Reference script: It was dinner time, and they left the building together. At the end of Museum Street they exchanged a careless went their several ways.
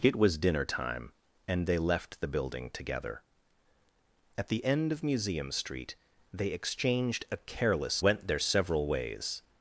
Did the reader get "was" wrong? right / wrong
right